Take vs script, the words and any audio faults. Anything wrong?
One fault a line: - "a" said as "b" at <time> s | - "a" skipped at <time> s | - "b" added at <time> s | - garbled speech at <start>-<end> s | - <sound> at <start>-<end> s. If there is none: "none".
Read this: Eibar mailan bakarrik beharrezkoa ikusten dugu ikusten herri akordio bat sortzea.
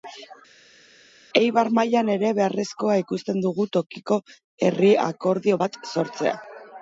- "bakarrik" said as "ere" at 2.1 s
- "ikusten" said as "tokiko" at 3.8 s